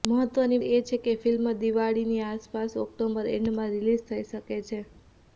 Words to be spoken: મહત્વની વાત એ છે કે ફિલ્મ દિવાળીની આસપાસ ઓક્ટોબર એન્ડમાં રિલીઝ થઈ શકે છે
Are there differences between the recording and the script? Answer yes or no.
yes